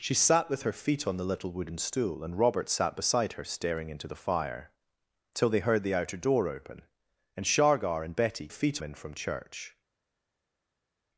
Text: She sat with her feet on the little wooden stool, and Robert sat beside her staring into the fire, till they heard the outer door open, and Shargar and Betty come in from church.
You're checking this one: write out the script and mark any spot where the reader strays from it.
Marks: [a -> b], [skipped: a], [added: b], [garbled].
She sat with her feet on the little wooden stool, and Robert sat beside her staring into the fire, till they heard the outer door open, and Shargar and Betty [come -> feet] in from church.